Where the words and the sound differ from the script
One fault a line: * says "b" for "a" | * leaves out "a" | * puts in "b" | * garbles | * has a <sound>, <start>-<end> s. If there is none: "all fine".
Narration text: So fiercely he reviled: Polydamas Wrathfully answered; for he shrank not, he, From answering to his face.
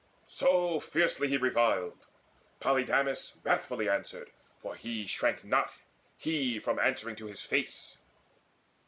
all fine